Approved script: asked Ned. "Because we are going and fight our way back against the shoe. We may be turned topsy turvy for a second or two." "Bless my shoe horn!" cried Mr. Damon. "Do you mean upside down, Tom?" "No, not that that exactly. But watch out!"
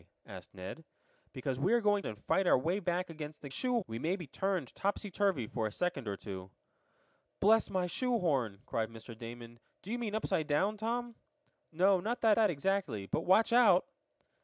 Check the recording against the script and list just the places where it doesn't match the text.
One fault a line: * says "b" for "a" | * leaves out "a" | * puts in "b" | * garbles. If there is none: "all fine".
all fine